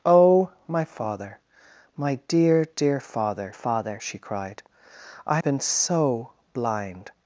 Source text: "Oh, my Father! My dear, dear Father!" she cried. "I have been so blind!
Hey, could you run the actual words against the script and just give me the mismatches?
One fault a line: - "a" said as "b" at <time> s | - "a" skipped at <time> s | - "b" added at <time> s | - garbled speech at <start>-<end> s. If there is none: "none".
- "Father" added at 3.5 s
- "have" skipped at 5.4 s